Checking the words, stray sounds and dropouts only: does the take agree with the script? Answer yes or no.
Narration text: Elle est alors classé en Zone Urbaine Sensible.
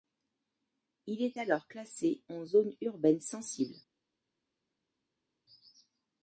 no